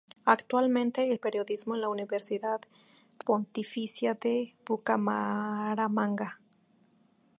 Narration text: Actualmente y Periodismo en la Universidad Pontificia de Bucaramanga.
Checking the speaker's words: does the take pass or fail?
pass